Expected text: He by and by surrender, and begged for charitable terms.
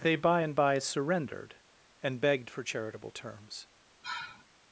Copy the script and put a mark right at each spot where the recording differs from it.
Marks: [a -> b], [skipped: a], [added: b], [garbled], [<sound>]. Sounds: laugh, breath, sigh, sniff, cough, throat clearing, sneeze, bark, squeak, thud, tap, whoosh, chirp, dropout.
[He -> They] by and by [surrender, -> surrendered] and begged for charitable terms. [sigh]